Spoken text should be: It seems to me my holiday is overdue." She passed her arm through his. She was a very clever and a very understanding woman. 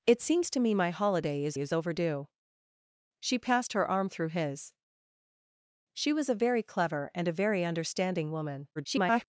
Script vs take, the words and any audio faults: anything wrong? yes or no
yes